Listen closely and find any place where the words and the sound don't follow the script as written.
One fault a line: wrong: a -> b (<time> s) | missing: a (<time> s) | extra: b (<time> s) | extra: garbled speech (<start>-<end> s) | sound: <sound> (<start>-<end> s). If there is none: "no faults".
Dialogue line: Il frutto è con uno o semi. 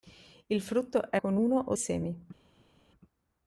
no faults